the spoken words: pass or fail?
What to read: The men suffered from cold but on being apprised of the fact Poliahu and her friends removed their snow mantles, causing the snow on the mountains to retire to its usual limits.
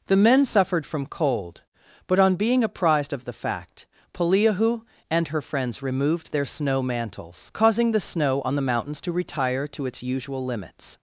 pass